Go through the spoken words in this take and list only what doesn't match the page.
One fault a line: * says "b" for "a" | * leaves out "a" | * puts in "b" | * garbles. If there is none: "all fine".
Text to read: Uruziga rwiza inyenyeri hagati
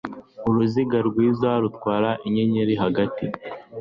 * puts in "rutwara"